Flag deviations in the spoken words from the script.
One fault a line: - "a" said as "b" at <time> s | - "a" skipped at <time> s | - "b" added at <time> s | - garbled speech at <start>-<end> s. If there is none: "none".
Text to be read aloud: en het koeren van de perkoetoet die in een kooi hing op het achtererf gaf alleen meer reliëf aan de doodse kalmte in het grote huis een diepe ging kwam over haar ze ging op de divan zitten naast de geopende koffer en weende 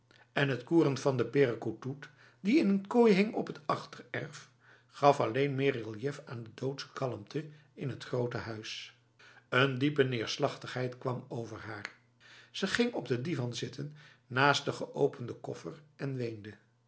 - "ging" said as "neerslachtigheid" at 10.0 s